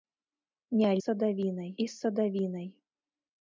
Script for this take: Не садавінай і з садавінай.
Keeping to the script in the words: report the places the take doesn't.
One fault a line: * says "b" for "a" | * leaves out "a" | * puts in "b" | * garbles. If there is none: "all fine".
all fine